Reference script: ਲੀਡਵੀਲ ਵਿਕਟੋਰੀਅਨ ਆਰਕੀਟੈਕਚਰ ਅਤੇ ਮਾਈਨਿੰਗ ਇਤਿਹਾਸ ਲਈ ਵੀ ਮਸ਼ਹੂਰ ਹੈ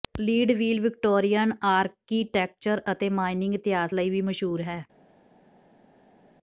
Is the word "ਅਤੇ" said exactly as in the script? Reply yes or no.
yes